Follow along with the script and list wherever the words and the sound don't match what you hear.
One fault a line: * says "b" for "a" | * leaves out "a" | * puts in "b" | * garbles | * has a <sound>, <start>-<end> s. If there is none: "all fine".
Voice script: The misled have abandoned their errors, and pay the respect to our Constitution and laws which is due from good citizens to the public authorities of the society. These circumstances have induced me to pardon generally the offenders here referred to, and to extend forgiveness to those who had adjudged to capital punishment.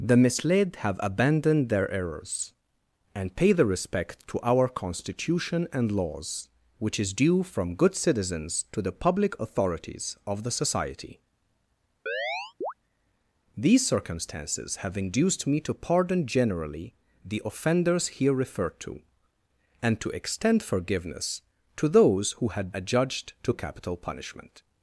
* has a chirp, 12.1-12.7 s